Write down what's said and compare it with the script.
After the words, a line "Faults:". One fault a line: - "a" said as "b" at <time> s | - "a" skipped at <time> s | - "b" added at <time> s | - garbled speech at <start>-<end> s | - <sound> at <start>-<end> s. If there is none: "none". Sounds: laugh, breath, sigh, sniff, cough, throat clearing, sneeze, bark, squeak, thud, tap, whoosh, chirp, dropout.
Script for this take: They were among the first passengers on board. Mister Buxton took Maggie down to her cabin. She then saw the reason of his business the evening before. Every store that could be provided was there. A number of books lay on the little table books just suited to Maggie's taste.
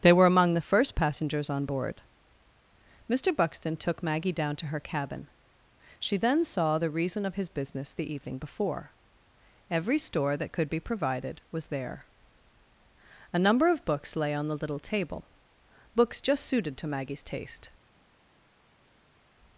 They were among the first passengers on board. Mister Buxton took Maggie down to her cabin. She then saw the reason of his business the evening before. Every store that could be provided was there. A number of books lay on the little table books just suited to Maggie's taste.
Faults:
none